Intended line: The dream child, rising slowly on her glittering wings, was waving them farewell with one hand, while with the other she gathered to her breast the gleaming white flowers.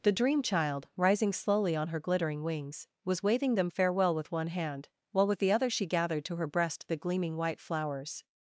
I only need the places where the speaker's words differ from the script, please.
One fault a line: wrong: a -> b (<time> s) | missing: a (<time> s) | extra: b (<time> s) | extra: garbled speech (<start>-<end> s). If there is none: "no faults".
no faults